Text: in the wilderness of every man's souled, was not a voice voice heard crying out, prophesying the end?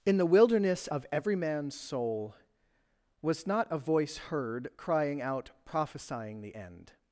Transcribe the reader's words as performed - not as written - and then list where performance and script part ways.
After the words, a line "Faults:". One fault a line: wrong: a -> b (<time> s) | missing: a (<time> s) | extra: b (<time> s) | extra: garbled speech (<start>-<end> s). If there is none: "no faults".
in the wilderness of every man's soul, was not a voice heard crying out, prophesying the end?
Faults:
wrong: souled -> soul (1.8 s)
missing: voice (4.2 s)